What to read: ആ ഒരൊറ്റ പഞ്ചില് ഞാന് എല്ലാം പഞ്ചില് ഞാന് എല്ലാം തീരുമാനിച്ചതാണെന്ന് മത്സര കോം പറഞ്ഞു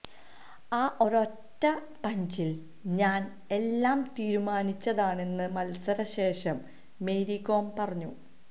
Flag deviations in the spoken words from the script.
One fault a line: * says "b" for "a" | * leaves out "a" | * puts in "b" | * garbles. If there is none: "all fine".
* says "തീരുമാനിച്ചതാണെന്ന് മത്സര ശേഷം മേരി" for "പഞ്ചില് ഞാന് എല്ലാം തീരുമാനിച്ചതാണെന്ന് മത്സര"